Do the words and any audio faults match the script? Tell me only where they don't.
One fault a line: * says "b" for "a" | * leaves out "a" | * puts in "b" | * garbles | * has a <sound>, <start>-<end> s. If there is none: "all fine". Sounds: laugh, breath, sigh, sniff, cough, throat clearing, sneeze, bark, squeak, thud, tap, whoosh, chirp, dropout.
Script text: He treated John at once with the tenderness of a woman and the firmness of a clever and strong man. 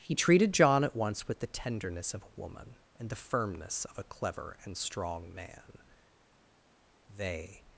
* puts in "They"